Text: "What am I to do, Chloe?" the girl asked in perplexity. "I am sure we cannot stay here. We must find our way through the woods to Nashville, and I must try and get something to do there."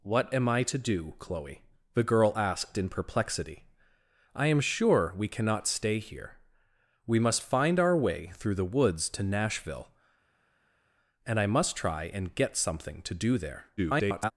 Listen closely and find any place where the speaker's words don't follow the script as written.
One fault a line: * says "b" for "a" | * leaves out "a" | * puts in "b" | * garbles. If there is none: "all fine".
* garbles